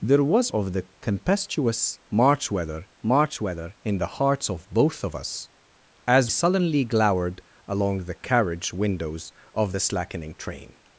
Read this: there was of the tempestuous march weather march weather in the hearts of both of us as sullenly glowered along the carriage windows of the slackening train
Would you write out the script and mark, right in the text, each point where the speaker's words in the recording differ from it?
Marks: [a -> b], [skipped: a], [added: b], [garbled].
there was of the tempestuous march weather march weather in the hearts of both of us as sullenly glowered along the carriage windows of the slackening train